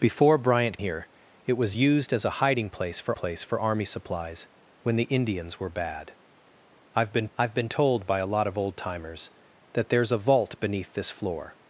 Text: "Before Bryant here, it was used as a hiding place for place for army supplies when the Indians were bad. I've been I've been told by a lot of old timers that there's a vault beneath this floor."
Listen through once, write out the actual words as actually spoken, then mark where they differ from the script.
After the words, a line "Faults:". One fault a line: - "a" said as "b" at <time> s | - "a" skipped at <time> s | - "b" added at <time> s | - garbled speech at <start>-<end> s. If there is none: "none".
"Before Bryant here, it was used as a hiding place for place for army supplies when the Indians were bad. I've been I've been told by a lot of old timers that there's a vault beneath this floor."
Faults:
none